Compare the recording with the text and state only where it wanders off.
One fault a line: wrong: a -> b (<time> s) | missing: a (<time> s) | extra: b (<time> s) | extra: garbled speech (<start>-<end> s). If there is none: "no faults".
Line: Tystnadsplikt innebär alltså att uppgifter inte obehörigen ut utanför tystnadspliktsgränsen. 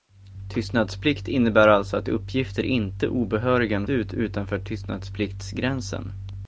no faults